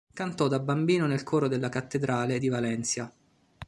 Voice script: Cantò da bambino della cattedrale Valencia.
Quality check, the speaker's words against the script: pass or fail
fail